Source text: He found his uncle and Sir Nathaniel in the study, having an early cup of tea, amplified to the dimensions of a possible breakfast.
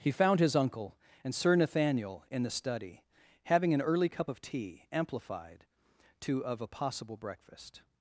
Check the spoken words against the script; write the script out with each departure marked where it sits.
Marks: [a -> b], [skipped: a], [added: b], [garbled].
He found his uncle and Sir Nathaniel in the study, having an early cup of tea, amplified to [skipped: the dimensions] of a possible breakfast.